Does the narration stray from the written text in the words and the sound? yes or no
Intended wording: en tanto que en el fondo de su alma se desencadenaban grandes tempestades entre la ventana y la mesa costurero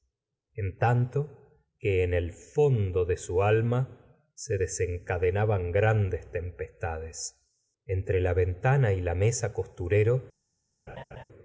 yes